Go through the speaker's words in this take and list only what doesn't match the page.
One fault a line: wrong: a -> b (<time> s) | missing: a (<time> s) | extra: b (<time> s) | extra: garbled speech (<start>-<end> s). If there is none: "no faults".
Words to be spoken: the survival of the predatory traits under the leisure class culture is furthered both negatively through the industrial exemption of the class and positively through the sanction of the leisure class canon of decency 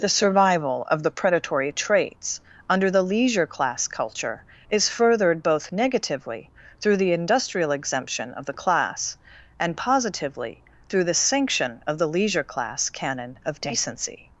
no faults